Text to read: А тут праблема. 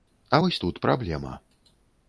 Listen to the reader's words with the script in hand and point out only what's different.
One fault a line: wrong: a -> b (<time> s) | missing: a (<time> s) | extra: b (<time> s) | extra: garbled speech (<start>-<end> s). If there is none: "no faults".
extra: вось (0.4 s)